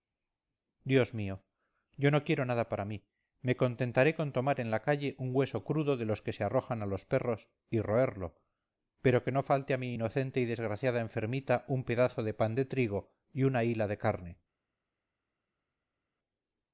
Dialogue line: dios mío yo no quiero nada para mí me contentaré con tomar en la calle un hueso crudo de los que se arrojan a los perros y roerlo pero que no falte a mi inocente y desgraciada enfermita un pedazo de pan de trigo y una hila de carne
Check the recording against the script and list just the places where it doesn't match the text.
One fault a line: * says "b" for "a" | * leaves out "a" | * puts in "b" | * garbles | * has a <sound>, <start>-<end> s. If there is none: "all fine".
all fine